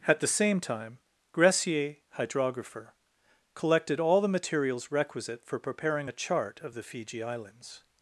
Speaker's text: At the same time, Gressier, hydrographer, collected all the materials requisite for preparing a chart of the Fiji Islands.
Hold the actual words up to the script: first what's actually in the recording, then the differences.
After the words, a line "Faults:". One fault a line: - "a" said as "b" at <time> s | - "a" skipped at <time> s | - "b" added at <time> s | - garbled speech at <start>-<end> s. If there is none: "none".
At the same time, Gressier, hydrographer, collected all the materials requisite for preparing a chart of the Fiji Islands.
Faults:
none